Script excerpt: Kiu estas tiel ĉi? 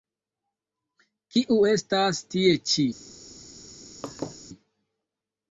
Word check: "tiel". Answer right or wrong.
wrong